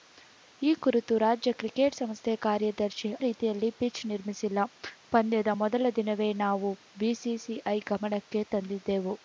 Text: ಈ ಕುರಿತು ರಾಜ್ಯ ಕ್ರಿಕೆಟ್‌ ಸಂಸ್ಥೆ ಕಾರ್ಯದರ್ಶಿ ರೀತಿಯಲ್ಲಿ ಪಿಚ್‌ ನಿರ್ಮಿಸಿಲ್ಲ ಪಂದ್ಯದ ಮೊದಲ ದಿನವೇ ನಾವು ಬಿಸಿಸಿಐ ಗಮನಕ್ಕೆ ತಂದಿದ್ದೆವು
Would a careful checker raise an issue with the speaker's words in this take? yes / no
no